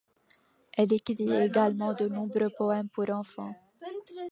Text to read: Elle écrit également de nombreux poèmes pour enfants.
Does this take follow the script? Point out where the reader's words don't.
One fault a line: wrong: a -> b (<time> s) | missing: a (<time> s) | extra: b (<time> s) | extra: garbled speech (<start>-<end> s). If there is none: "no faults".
no faults